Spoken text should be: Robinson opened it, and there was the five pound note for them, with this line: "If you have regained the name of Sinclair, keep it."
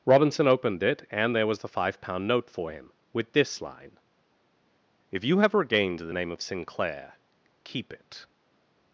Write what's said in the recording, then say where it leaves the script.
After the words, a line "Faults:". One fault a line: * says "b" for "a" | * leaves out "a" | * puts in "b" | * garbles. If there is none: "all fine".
Robinson opened it, and there was the five pound note for him, with this line: "If you have regained the name of Sinclair, keep it."
Faults:
* says "him" for "them"